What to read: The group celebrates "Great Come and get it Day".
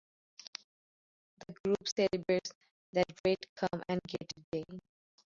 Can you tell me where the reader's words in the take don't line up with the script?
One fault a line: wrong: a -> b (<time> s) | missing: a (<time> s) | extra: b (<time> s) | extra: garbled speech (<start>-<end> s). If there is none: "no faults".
extra: That (2.9 s)